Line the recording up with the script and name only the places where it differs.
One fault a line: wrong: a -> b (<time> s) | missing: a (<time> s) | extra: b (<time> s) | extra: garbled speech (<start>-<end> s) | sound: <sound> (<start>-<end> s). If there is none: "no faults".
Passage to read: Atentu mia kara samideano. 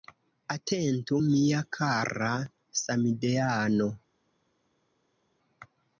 no faults